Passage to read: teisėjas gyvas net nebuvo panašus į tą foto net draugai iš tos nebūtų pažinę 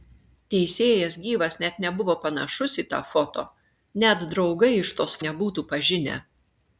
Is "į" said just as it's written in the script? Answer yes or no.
yes